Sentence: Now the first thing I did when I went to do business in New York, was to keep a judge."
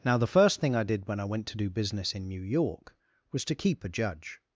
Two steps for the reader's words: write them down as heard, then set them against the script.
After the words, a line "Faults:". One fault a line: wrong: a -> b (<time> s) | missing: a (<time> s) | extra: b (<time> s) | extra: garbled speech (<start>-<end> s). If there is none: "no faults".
Now the first thing I did when I went to do business in New York, was to keep a judge."
Faults:
no faults